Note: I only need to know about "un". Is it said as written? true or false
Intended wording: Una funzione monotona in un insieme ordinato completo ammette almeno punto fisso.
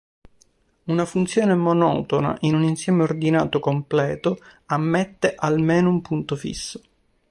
true